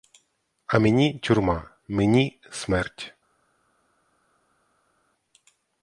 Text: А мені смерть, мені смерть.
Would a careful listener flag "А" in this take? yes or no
no